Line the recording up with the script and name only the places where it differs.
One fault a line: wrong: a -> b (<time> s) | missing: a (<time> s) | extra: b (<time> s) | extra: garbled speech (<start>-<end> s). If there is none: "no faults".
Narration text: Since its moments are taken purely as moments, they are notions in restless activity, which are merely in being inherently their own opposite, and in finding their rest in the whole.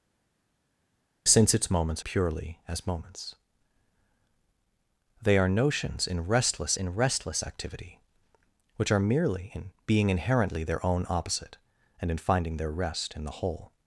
missing: are taken (2.0 s)
extra: in restless (6.8 s)